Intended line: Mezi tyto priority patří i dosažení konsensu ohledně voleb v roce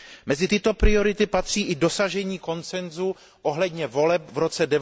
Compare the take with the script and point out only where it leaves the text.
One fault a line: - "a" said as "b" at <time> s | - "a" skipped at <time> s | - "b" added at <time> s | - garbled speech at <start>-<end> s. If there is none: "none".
none